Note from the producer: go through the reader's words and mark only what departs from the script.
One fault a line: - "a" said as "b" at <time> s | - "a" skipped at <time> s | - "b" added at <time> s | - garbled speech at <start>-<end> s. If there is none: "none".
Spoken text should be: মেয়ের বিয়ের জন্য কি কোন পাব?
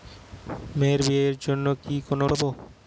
none